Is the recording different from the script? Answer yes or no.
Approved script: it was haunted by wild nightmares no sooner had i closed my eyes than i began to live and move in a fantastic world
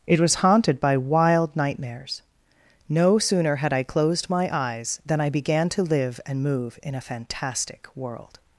no